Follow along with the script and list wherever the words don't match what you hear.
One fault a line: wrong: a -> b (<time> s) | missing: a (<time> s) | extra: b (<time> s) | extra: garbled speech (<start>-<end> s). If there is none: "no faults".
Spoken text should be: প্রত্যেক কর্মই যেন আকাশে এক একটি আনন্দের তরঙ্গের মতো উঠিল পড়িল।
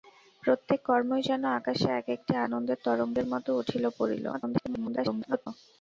extra: garbled speech (4.3-5.5 s)